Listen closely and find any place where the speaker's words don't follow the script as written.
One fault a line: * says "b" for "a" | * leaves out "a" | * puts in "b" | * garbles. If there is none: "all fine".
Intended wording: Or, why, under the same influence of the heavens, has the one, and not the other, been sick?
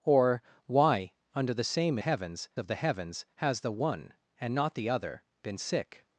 * says "heavens" for "influence"